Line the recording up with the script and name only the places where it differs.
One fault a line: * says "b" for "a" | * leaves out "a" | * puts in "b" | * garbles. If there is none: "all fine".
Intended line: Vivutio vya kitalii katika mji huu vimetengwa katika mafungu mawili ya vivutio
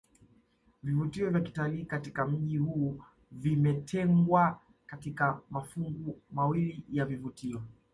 all fine